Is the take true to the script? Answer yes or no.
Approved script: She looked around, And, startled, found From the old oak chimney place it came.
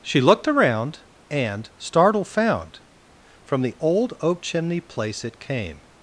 yes